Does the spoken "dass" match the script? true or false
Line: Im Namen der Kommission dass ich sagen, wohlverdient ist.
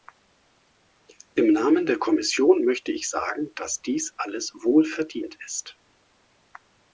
false